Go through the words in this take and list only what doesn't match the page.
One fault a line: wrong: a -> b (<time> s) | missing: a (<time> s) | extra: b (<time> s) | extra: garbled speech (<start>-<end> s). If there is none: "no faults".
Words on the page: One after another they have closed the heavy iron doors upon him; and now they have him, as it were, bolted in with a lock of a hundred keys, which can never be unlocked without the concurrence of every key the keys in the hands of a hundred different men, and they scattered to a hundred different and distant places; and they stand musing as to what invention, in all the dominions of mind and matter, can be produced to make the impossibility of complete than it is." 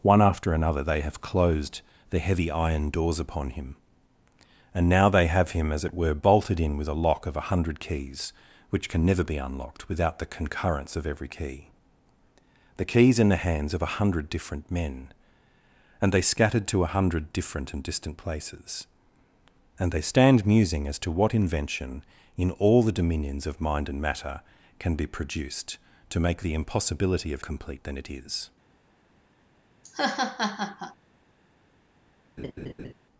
no faults